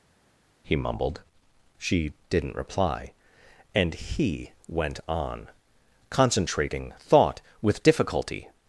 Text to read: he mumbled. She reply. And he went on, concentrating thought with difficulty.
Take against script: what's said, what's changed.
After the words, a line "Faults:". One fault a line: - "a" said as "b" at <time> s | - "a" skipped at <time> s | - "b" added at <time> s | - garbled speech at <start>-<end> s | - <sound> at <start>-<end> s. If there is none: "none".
he mumbled. She didn't reply. And he went on, concentrating thought with difficulty.
Faults:
- "didn't" added at 2.3 s